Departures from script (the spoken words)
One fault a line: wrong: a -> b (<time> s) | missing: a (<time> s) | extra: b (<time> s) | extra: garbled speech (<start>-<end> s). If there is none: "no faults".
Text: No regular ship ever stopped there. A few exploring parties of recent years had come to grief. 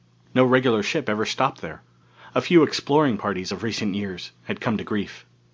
no faults